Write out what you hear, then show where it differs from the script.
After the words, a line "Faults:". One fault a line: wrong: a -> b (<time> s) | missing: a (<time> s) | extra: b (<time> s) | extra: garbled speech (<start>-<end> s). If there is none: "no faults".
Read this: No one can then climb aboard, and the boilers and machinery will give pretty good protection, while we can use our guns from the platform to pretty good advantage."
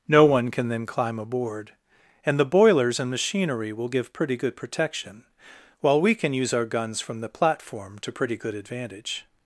No one can then climb aboard, and the boilers and machinery will give pretty good protection, while we can use our guns from the platform to pretty good advantage."
Faults:
no faults